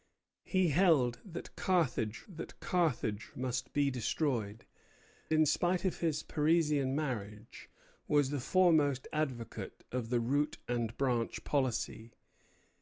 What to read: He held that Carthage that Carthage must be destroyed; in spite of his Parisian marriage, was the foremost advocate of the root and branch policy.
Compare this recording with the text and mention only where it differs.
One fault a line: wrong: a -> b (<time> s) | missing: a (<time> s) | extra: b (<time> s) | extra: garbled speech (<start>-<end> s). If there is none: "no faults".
no faults